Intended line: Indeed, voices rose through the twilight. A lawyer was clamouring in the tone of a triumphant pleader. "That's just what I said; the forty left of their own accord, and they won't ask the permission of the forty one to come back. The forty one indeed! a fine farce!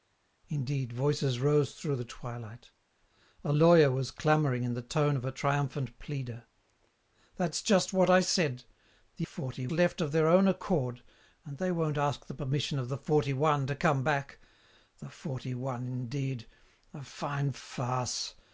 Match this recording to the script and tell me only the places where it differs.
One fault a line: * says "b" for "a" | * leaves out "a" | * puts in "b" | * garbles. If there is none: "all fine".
all fine